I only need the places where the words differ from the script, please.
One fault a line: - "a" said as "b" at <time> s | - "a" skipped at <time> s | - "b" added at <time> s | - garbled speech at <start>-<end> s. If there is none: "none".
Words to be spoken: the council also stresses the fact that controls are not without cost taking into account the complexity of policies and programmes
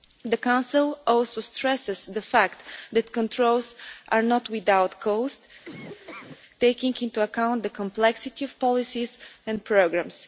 none